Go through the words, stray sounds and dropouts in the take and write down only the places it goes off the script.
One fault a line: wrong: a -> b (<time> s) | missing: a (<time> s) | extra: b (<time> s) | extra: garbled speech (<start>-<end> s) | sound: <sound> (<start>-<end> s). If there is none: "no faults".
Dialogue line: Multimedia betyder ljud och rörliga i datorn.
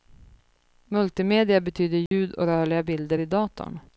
sound: dropout (2.1-2.1 s)
extra: bilder (2.8 s)